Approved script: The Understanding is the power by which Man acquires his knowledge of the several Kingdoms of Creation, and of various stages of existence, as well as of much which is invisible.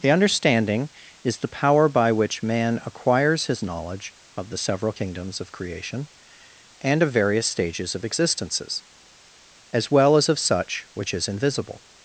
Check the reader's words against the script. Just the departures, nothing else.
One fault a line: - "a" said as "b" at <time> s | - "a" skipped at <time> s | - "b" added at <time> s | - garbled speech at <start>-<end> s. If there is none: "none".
- "existence" said as "existences" at 8.0 s
- "much" said as "such" at 10.4 s